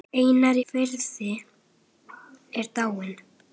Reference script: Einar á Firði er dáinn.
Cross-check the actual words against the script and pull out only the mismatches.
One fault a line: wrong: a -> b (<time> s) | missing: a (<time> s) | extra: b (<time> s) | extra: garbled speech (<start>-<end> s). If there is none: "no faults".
missing: á (0.6 s)